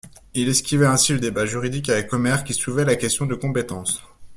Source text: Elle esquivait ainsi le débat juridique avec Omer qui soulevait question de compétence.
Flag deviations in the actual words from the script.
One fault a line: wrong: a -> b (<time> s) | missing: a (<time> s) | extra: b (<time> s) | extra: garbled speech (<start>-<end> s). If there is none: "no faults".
wrong: Elle -> Il (0.3 s)
extra: la (2.8 s)